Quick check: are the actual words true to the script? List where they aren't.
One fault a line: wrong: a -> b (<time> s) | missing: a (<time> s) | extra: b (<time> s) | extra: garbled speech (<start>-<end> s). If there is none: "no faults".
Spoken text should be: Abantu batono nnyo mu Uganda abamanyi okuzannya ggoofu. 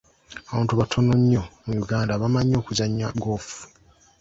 no faults